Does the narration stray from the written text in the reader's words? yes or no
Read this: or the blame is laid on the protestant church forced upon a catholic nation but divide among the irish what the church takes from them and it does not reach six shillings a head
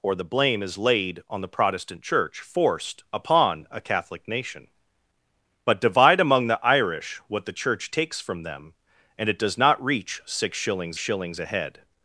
yes